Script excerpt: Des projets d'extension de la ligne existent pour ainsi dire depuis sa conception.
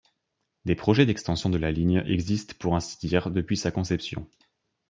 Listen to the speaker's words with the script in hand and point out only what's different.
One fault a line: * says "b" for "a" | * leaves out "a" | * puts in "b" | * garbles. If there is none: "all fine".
all fine